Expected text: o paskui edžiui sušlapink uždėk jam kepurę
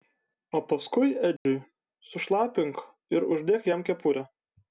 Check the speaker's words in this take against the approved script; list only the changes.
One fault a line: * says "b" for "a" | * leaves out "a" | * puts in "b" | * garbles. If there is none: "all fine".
* puts in "ir"